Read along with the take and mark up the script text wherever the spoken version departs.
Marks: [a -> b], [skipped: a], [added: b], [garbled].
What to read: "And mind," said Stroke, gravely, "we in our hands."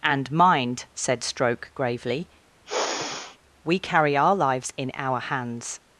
"And mind," said Stroke, gravely, "we [added: carry our lives] in our hands."